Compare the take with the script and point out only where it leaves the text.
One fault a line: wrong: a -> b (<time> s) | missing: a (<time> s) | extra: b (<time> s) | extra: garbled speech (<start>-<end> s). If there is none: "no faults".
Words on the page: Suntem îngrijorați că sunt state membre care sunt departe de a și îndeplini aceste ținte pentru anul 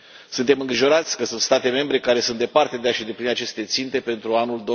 no faults